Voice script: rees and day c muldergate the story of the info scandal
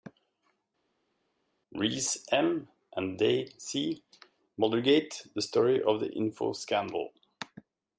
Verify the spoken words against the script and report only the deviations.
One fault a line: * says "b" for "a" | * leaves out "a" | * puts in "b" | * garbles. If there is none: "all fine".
* puts in "m"